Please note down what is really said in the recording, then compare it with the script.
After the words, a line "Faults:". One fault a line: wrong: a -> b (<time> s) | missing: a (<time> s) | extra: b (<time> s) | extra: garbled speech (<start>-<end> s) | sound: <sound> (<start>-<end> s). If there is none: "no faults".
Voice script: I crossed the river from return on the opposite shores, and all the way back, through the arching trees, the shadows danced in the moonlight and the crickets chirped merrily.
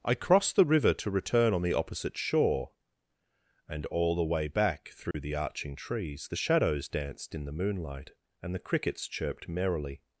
I crossed the river to return on the opposite shore, and all the way back, through the arching trees, the shadows danced in the moonlight and the crickets chirped merrily.
Faults:
wrong: from -> to (0.9 s)
wrong: shores -> shore (2.2 s)
sound: dropout (5.1-5.1 s)